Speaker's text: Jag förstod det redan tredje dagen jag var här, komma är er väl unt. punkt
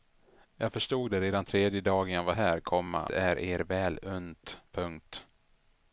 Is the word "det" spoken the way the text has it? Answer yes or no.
yes